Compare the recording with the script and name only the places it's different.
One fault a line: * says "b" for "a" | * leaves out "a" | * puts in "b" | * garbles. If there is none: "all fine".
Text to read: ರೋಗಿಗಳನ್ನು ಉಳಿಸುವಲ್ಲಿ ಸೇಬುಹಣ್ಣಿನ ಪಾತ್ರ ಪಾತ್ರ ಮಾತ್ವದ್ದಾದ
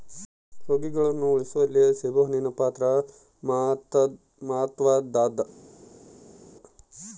* leaves out "ಪಾತ್ರ"